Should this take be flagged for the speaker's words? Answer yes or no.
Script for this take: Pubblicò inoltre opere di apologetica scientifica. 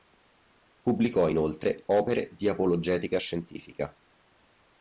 no